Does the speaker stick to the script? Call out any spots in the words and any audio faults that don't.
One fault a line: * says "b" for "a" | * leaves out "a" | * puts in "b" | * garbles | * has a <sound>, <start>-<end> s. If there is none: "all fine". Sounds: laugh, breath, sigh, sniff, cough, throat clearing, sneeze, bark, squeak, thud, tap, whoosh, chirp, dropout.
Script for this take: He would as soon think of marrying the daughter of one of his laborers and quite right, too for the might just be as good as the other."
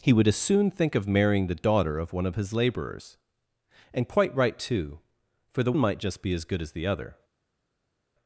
all fine